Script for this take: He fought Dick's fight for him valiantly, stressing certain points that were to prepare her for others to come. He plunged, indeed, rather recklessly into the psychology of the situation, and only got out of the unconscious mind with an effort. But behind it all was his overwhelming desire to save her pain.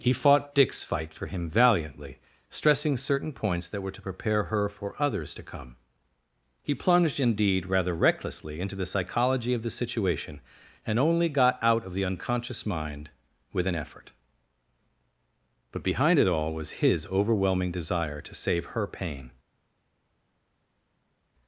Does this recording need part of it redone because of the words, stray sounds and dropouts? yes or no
no